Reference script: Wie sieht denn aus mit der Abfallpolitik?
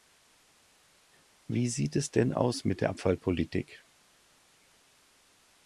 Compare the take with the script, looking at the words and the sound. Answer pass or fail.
fail